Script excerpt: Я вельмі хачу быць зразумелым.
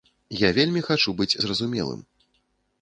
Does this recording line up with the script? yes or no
yes